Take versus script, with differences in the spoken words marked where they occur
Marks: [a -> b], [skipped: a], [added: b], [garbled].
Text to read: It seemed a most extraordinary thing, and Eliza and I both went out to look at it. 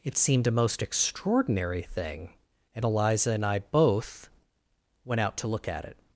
It seemed a most extraordinary thing, and Eliza and I both went out to look at it.